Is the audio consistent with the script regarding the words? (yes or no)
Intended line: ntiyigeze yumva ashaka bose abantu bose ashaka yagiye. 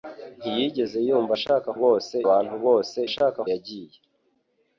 yes